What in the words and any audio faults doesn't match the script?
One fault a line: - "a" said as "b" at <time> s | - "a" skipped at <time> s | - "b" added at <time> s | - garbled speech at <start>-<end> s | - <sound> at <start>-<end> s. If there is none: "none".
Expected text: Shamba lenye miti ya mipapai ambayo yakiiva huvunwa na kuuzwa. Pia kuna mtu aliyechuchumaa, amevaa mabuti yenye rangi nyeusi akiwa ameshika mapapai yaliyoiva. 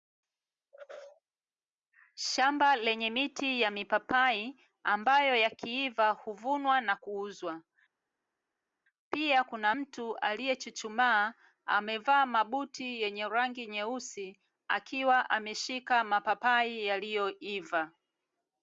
none